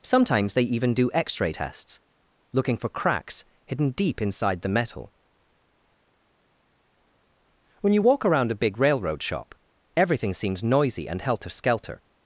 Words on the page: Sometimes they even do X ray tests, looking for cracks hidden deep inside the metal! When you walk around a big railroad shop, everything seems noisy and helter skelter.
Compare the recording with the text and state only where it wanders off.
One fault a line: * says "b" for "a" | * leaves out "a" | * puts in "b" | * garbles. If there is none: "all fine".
all fine